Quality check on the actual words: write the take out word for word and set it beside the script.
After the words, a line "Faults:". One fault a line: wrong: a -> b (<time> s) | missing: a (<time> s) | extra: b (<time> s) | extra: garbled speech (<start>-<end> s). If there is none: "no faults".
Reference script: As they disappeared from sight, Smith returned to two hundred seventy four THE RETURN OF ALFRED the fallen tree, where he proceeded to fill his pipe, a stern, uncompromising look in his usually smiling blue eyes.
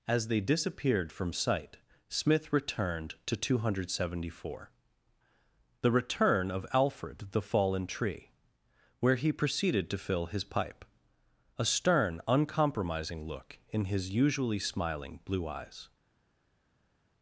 As they disappeared from sight, Smith returned to two hundred seventy four THE RETURN OF ALFRED the fallen tree, where he proceeded to fill his pipe, a stern, uncompromising look in his usually smiling blue eyes.
Faults:
no faults